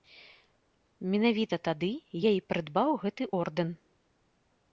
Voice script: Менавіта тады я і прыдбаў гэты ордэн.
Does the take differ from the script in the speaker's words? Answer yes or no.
no